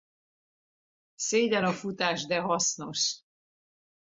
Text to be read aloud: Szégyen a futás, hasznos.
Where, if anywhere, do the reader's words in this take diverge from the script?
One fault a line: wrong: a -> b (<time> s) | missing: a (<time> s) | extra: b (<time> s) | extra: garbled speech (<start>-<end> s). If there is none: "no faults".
extra: de (2.3 s)